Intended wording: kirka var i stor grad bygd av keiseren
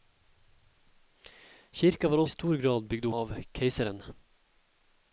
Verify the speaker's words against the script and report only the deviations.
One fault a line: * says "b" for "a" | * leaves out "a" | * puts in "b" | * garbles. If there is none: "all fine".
all fine